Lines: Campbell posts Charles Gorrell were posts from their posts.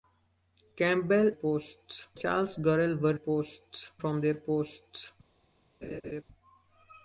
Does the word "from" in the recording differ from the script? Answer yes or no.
no